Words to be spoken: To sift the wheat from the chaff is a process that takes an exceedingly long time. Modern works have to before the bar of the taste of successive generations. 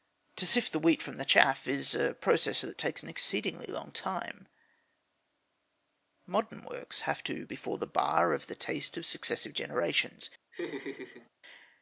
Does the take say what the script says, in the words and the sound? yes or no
no